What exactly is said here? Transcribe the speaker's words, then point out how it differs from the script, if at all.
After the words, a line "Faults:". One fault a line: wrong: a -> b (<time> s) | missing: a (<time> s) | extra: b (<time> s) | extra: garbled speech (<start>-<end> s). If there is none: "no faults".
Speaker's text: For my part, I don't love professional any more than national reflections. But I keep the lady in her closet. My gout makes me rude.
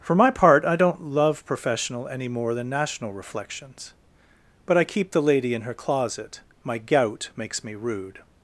For my part, I don't love professional any more than national reflections. But I keep the lady in her closet. My gout makes me rude.
Faults:
no faults